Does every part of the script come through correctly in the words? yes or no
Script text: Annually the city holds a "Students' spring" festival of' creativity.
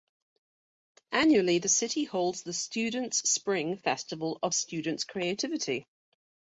no